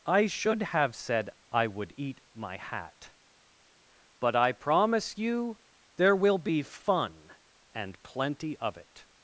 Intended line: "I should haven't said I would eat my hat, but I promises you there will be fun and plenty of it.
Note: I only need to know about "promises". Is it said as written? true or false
false